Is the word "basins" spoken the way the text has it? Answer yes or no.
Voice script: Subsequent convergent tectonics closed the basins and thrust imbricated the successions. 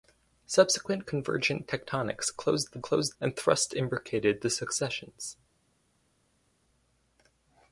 no